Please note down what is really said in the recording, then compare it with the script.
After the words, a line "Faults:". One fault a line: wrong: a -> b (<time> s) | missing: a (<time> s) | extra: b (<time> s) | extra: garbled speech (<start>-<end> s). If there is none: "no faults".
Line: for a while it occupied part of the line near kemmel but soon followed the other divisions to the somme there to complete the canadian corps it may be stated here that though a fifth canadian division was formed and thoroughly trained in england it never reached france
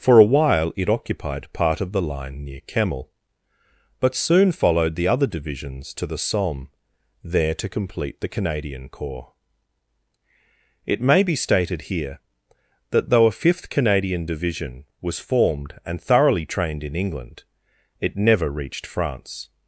for a while it occupied part of the line near kemmel but soon followed the other divisions to the somme there to complete the canadian corps it may be stated here that though a fifth canadian division was formed and thoroughly trained in england it never reached france
Faults:
no faults